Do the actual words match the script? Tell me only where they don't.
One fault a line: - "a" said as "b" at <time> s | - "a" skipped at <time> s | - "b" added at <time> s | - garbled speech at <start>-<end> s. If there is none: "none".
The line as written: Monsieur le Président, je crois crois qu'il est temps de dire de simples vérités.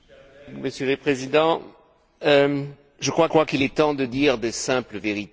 none